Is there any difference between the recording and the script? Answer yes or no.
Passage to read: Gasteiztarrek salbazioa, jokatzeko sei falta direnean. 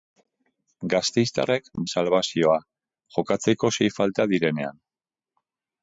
no